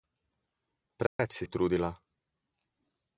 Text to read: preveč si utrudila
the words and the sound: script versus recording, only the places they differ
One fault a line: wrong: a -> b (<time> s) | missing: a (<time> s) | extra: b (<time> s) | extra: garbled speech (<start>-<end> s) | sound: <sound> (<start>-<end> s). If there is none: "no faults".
sound: dropout (1.1-1.2 s)